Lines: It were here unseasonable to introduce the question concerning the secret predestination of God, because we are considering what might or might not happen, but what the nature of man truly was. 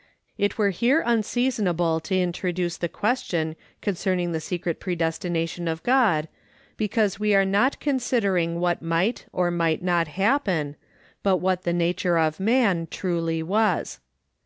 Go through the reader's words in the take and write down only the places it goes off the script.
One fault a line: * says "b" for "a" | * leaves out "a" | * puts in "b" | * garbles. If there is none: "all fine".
* puts in "not"